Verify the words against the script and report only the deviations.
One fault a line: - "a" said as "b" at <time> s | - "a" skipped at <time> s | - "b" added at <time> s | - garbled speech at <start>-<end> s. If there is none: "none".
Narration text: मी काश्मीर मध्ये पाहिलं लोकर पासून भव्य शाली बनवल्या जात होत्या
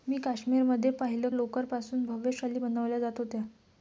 none